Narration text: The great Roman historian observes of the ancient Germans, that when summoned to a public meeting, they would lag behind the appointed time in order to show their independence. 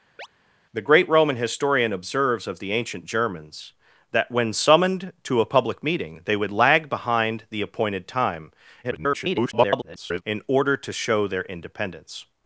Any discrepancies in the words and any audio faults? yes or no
yes